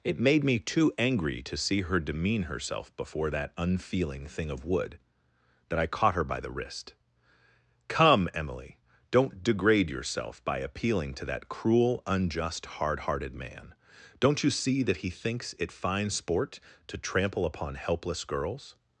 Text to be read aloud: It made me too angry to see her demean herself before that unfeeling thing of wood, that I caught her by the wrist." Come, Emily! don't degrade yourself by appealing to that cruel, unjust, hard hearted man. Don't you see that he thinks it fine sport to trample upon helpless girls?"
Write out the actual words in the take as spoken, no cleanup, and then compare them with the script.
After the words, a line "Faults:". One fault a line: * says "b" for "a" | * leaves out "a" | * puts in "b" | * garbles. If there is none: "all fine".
It made me too angry to see her demean herself before that unfeeling thing of wood, that I caught her by the wrist." Come, Emily! don't degrade yourself by appealing to that cruel, unjust, hard hearted man. Don't you see that he thinks it fine sport to trample upon helpless girls?"
Faults:
all fine